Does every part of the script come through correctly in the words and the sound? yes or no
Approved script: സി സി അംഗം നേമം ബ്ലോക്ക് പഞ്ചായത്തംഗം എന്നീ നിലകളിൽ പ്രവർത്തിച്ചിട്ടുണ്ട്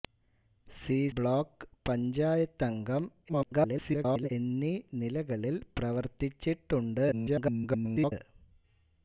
no